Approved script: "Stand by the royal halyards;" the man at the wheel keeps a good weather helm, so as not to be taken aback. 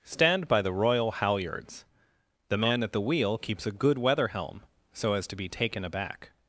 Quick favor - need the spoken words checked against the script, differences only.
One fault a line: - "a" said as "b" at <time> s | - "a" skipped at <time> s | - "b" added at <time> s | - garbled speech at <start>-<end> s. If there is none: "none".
- "not" skipped at 5.2 s